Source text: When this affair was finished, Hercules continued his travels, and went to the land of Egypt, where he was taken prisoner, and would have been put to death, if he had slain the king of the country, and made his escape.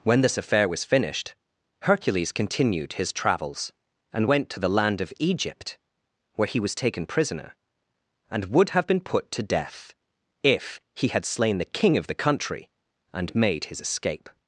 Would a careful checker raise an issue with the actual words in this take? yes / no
no